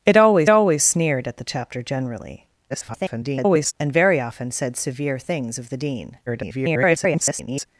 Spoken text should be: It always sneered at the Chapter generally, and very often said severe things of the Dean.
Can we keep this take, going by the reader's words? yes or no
no